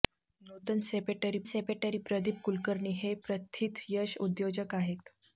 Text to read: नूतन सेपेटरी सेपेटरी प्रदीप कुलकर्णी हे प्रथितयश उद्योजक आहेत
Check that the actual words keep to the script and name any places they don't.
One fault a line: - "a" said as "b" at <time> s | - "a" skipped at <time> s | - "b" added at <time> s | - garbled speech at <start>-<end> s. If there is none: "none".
none